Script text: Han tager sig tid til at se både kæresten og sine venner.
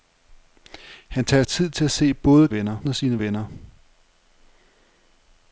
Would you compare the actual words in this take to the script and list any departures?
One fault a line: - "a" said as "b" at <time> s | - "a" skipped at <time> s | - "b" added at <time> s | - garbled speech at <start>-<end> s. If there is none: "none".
- "sig" skipped at 1.4 s
- "kæresten" said as "venner" at 2.5 s